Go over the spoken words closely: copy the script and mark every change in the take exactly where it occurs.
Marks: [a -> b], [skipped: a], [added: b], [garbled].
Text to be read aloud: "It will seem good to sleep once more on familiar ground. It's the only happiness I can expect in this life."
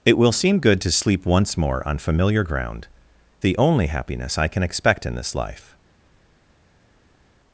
"It will seem good to sleep once more on familiar ground. [skipped: It's] the only happiness I can expect in this life."